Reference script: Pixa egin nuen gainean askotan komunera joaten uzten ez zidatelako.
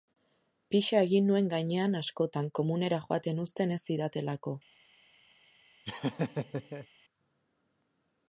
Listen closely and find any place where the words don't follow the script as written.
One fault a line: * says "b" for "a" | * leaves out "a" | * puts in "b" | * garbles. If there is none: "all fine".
all fine